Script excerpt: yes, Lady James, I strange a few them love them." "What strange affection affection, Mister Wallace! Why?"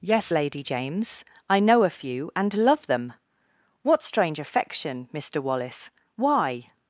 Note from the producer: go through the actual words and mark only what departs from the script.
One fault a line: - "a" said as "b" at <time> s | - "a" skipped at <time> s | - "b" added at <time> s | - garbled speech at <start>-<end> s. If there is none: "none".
- "strange" said as "know" at 1.6 s
- "them" said as "and" at 2.4 s
- "affection" skipped at 5.1 s